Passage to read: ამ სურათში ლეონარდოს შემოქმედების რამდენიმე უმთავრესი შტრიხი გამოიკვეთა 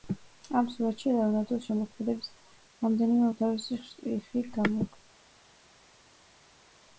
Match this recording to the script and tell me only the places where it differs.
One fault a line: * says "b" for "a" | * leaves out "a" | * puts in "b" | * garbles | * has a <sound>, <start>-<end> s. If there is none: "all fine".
all fine